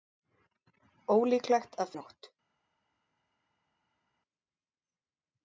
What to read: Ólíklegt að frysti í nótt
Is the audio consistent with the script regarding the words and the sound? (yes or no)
no